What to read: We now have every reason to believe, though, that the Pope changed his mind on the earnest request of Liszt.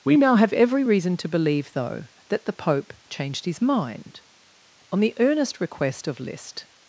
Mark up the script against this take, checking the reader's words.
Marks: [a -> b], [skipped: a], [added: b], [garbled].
We now have every reason to believe, though, that the Pope changed his mind on the earnest request of Liszt.